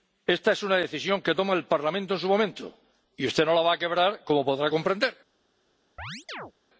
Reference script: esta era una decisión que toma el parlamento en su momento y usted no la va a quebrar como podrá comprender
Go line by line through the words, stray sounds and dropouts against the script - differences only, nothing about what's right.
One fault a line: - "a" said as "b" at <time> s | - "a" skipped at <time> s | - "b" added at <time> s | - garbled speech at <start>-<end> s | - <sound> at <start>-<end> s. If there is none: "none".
- "era" said as "es" at 0.5 s
- chirp at 6.0-6.5 s